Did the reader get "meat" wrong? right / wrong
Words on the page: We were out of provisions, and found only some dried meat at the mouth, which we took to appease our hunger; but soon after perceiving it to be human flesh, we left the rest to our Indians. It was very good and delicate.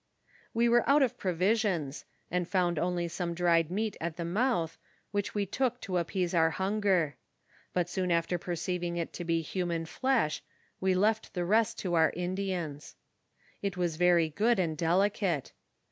right